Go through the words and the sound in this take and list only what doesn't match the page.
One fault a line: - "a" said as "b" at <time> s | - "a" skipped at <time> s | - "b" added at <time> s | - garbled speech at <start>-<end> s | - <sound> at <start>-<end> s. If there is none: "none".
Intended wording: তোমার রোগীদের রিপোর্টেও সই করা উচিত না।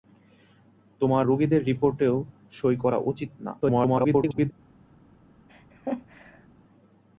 - garbled speech at 3.6-4.5 s
- laugh at 5.5-6.5 s